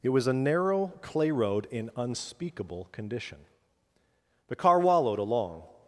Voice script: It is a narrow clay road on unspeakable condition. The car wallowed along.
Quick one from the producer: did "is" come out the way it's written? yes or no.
no